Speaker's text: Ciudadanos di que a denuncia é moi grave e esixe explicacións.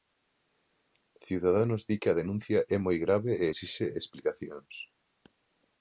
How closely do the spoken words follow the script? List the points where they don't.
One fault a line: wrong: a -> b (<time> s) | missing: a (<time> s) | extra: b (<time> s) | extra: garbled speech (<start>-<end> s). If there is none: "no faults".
no faults